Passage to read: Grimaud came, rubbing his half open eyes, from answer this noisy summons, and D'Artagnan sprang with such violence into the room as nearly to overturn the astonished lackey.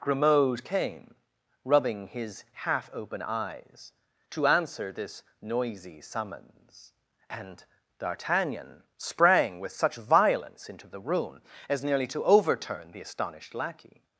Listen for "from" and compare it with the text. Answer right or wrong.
wrong